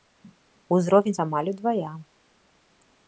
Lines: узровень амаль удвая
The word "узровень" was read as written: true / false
true